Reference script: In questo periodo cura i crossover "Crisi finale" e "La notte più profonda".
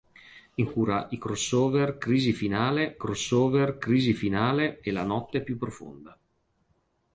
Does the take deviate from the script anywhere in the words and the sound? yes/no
yes